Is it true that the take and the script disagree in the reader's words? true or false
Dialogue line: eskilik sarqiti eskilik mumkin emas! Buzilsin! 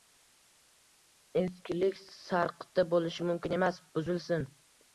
true